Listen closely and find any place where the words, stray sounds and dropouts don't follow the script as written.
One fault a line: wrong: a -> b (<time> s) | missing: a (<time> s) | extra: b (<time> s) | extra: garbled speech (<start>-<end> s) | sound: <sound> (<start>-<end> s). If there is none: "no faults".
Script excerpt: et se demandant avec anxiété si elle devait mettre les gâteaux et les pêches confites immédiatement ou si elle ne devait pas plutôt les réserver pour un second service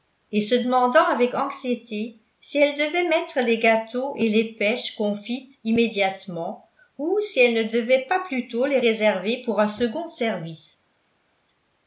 no faults